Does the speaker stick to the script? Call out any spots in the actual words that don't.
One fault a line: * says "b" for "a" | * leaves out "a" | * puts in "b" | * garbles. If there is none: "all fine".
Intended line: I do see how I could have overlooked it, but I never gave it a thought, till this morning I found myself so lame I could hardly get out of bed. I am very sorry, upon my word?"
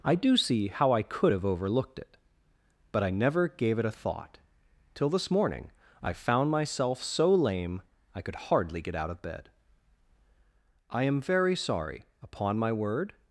all fine